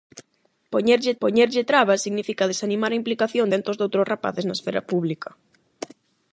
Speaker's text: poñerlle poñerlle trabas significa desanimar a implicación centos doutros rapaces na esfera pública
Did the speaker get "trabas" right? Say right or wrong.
right